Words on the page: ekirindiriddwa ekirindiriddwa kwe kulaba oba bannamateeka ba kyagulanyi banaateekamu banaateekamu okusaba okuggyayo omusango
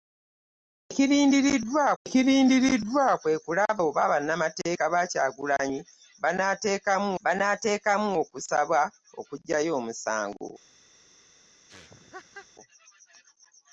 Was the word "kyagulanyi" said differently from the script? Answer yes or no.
no